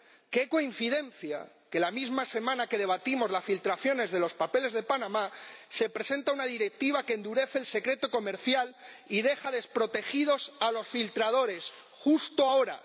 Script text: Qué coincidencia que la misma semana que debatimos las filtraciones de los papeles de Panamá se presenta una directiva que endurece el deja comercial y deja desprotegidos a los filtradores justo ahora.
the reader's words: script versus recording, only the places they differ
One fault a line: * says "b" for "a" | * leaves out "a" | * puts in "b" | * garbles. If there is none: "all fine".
* says "secreto" for "deja"